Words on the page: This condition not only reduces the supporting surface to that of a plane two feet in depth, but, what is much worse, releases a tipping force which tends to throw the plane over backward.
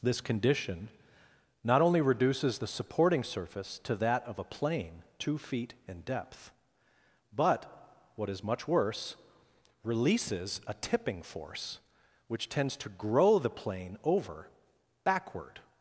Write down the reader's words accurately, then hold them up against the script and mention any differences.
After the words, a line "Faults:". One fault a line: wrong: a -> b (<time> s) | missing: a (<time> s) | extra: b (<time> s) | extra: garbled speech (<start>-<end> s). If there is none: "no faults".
This condition not only reduces the supporting surface to that of a plane two feet in depth, but, what is much worse, releases a tipping force which tends to grow the plane over backward.
Faults:
wrong: throw -> grow (12.9 s)